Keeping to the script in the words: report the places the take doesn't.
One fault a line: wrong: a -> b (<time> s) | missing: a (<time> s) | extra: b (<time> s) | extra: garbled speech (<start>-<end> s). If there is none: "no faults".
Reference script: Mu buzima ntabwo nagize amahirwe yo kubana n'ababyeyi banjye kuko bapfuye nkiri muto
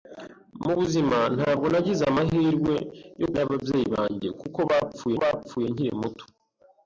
missing: kubana (3.3 s)
extra: bapfuye (5.2 s)